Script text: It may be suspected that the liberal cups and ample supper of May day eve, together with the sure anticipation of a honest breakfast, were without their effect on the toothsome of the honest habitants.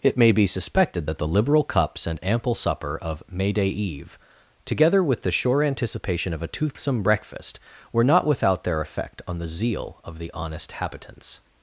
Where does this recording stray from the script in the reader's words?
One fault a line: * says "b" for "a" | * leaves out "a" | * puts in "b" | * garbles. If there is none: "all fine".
* says "toothsome" for "honest"
* puts in "not"
* says "zeal" for "toothsome"